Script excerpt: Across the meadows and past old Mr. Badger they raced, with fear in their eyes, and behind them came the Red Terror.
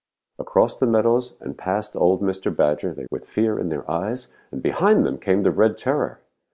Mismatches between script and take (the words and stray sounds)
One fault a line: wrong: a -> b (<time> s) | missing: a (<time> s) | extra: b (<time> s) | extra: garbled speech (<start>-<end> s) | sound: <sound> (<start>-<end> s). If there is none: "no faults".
missing: raced (3.0 s)